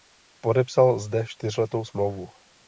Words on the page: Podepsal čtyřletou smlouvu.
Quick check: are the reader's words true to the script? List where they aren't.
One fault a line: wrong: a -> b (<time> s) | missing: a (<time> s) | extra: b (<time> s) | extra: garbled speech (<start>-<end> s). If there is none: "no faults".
extra: zde (1.0 s)